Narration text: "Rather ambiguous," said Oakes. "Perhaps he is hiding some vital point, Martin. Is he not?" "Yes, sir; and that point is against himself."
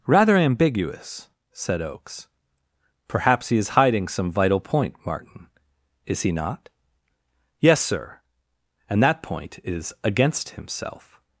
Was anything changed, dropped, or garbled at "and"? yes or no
no